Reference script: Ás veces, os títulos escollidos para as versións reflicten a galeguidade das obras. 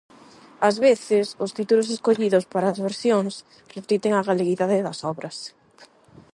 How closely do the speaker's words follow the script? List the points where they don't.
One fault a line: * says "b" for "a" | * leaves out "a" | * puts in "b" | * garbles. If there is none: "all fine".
all fine